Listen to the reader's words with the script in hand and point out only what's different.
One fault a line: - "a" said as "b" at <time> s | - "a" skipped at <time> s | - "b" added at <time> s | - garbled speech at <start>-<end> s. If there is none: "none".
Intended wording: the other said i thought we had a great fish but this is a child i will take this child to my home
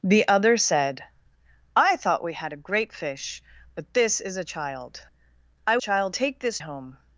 - "will" said as "child" at 5.8 s
- "child to my" skipped at 6.6 s